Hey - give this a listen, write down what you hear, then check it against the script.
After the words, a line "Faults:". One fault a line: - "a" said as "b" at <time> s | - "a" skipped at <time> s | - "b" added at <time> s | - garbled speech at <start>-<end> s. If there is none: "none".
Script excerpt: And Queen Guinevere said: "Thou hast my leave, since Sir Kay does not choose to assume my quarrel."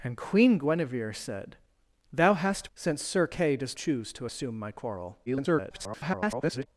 And Queen Guinevere said: "Thou hast since Sir Kay does choose to assume my quarrel." [garbled]
Faults:
- "my leave" skipped at 2.7 s
- "not" skipped at 3.8 s
- garbled speech at 5.3-6.7 s